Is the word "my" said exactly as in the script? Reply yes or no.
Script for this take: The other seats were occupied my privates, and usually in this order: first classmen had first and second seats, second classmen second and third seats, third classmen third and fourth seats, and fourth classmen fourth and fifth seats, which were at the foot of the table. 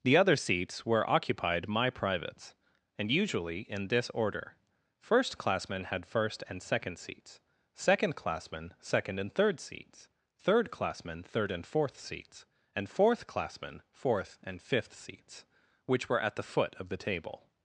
yes